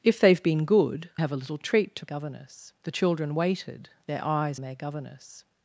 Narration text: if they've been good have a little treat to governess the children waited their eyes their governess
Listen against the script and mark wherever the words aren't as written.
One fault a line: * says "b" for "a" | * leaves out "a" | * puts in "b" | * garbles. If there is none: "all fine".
all fine